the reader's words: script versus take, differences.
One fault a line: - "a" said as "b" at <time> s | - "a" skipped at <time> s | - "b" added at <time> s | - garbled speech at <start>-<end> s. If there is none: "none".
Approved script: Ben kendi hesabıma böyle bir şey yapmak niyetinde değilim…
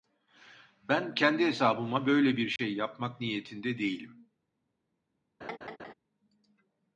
none